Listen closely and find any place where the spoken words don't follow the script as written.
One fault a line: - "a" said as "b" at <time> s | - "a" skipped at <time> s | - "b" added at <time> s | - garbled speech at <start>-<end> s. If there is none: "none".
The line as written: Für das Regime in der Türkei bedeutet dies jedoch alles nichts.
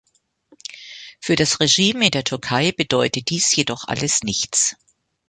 none